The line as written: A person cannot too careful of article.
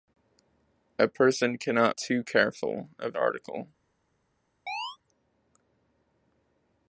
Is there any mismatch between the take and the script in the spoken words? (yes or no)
no